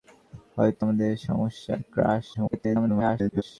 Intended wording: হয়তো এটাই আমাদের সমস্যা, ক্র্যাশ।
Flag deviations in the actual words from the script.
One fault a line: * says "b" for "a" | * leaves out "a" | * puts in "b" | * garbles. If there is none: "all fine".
* leaves out "এটাই"
* garbles